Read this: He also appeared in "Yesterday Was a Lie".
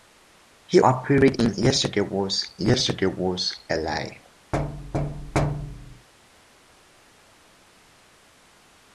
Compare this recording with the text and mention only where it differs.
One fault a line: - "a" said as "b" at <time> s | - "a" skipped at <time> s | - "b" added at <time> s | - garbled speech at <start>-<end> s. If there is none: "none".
- "also" skipped at 0.8 s
- "yesterday Was" added at 2.6 s